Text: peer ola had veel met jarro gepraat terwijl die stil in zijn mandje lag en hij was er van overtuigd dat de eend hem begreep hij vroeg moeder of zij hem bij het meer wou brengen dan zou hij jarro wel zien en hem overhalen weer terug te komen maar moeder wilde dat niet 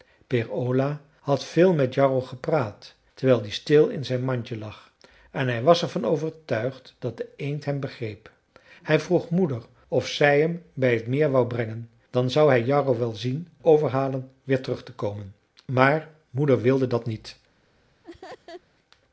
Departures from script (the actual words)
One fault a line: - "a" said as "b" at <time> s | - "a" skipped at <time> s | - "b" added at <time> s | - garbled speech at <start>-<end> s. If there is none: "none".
- "en hem" skipped at 13.5 s